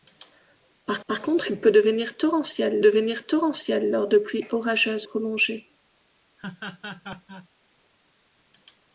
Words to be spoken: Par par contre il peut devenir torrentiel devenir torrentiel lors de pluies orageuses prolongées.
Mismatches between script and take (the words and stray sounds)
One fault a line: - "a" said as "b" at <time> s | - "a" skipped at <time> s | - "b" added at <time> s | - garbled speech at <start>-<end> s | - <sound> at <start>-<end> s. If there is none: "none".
- laugh at 6.4-7.5 s